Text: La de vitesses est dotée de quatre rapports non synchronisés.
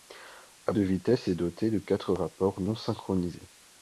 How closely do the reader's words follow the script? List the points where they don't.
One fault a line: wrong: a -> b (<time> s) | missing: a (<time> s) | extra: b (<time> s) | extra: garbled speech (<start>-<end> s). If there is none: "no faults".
no faults